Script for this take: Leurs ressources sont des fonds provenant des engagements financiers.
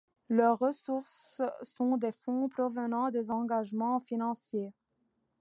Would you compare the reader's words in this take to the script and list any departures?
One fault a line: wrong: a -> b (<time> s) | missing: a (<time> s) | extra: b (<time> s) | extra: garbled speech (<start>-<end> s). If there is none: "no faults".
no faults